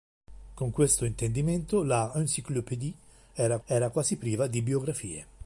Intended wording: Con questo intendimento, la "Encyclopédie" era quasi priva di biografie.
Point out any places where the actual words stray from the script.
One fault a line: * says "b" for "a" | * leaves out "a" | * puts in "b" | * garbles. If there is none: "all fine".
* puts in "era"